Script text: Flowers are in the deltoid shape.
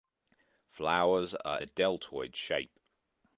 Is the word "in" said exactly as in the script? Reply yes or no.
no